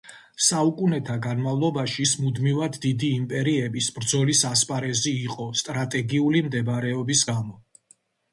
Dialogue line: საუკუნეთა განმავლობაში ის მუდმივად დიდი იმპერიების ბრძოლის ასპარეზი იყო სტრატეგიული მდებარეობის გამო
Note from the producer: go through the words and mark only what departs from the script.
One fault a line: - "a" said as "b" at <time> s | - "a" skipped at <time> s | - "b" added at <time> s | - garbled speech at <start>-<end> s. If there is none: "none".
none